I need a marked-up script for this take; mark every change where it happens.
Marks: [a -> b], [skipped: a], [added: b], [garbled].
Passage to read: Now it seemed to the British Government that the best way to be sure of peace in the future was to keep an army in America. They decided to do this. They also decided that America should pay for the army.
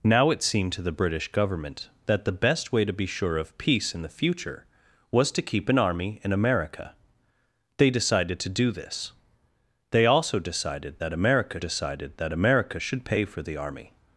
Now it seemed to the British Government that the best way to be sure of peace in the future was to keep an army in America. They decided to do this. They also decided that America [added: decided that America] should pay for the army.